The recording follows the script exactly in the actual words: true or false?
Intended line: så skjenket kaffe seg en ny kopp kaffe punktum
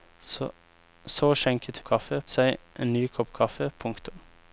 true